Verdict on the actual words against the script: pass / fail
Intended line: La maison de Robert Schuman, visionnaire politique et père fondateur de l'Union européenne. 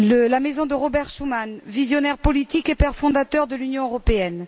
pass